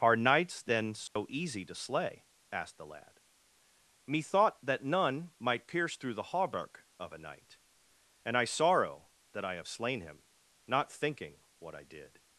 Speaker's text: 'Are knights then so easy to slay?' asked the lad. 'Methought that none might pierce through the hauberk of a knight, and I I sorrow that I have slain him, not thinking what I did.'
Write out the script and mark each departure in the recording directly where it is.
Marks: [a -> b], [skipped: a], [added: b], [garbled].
'Are knights then so easy to slay?' asked the lad. 'Methought that none might pierce through the hauberk of a knight, and I [skipped: I] sorrow that I have slain him, not thinking what I did.'